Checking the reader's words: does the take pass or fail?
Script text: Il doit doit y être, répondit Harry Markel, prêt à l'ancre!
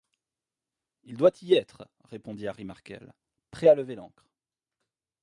fail